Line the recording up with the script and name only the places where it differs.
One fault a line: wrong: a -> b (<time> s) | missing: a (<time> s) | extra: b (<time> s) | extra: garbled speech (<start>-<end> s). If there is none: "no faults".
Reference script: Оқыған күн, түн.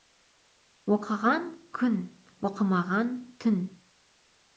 extra: оқымаған (2.5 s)